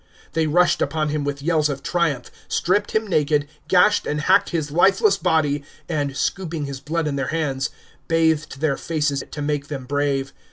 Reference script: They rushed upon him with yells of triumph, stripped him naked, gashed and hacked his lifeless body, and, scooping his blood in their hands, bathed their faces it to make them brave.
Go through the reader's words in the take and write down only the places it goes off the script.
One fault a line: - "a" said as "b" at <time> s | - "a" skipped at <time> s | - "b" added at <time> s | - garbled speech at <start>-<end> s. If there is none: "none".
none